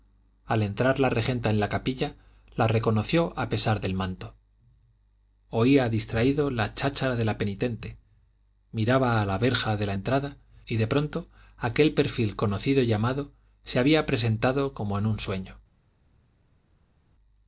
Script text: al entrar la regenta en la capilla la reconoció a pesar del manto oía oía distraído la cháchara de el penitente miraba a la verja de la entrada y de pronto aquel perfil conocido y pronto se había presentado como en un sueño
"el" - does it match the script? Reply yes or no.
no